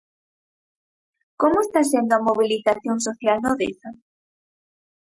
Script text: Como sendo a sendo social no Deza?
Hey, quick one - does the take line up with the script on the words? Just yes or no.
no